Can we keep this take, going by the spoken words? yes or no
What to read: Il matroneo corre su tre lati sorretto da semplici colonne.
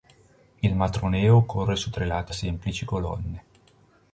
no